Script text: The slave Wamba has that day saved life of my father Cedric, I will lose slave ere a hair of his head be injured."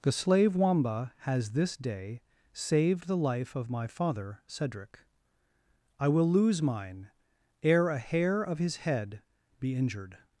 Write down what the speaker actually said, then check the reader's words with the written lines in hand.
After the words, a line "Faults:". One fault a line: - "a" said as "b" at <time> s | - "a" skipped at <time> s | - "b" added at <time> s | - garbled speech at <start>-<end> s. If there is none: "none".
The slave Wamba has this day saved the life of my father Cedric, I will lose mine ere a hair of his head be injured."
Faults:
- "that" said as "this" at 1.5 s
- "the" added at 3.0 s
- "slave" said as "mine" at 6.6 s